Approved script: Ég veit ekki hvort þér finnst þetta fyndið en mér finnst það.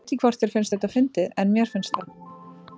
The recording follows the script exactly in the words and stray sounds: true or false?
false